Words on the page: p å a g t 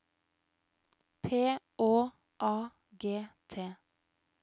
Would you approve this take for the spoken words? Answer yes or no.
yes